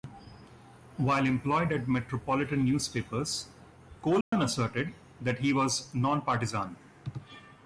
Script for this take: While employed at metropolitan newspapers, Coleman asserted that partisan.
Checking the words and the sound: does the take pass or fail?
fail